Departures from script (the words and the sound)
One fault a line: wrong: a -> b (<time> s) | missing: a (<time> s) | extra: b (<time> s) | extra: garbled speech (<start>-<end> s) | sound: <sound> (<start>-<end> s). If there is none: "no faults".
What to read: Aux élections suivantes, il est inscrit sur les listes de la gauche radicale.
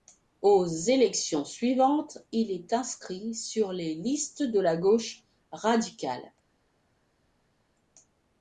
no faults